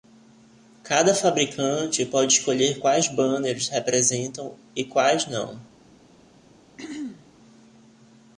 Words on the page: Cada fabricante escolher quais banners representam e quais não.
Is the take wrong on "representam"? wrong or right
right